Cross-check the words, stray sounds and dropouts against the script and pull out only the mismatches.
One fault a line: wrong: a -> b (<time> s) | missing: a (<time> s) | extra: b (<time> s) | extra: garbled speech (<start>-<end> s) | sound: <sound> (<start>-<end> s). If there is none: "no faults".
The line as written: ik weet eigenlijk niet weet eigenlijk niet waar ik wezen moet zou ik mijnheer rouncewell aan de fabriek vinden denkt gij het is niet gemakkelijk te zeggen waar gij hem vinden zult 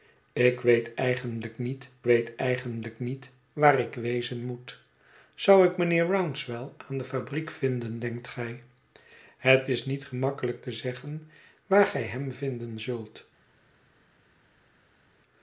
no faults